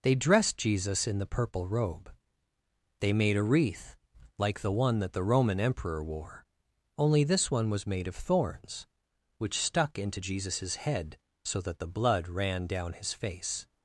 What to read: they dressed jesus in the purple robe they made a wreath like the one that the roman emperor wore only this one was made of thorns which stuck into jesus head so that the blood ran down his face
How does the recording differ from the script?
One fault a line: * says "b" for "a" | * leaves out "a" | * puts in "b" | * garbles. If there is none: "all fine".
all fine